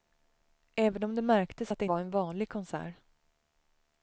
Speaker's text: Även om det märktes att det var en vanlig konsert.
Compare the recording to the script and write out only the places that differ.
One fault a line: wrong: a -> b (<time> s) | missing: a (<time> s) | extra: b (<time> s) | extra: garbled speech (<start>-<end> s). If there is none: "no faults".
no faults